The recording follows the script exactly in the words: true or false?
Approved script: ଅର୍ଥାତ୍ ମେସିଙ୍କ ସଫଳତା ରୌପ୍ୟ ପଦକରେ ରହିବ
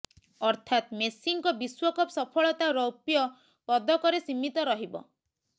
false